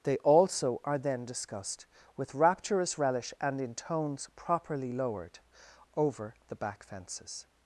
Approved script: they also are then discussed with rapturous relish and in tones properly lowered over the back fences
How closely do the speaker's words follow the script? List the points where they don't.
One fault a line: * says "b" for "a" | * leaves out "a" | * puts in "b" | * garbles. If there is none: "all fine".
all fine